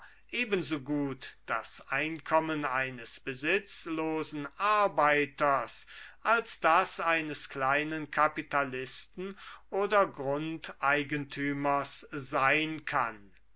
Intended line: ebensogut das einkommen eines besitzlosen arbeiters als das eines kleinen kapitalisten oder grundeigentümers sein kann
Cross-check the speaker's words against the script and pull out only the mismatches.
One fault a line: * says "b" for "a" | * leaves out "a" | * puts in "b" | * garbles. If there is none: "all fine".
all fine